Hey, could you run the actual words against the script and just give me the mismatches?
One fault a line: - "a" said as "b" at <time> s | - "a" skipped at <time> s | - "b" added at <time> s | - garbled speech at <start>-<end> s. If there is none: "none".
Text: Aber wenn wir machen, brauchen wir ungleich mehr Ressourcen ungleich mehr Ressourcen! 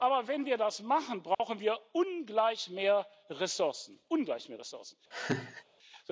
- "das" added at 0.6 s